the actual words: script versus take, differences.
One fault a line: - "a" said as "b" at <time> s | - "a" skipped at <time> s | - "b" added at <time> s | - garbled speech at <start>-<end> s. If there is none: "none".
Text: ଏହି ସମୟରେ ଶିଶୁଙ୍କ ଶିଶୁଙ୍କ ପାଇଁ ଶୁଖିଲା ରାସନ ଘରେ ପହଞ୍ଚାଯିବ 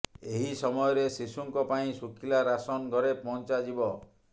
- "ଶିଶୁଙ୍କ" skipped at 1.7 s